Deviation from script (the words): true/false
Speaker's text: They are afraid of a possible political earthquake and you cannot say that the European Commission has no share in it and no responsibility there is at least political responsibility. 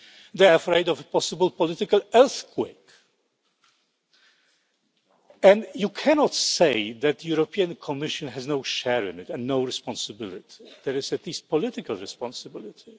false